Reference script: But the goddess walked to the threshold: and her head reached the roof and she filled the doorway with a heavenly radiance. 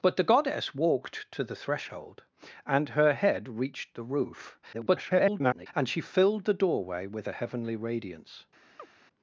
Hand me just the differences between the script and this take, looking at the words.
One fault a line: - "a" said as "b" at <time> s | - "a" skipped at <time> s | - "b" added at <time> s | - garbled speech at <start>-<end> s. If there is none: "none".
- garbled speech at 4.7-5.7 s